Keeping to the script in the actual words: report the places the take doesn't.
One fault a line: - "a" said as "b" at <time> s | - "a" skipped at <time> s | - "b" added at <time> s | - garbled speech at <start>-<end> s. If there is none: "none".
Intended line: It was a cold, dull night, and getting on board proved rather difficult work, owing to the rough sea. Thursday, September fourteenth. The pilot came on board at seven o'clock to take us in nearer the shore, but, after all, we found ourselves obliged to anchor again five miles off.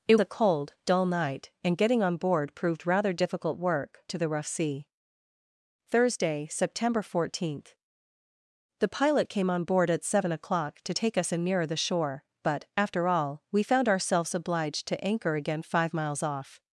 - "was" skipped at 0.1 s
- "owing" skipped at 4.0 s